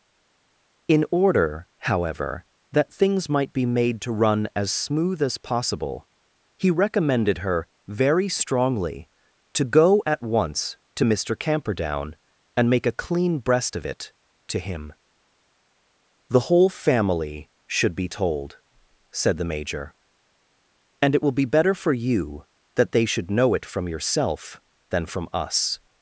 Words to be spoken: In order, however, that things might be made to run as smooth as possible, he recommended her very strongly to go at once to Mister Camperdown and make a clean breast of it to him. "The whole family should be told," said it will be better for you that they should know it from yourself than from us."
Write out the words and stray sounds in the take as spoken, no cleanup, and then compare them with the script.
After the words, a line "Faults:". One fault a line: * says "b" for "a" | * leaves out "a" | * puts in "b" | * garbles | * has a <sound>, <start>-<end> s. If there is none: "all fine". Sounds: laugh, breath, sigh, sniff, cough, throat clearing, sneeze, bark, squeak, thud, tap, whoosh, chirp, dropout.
In order, however, that things might be made to run as smooth as possible, he recommended her very strongly to go at once to Mister Camperdown and make a clean breast of it to him. "The whole family should be told," said the major, "and it will be better for you that they should know it from yourself than from us."
Faults:
* puts in "the major and"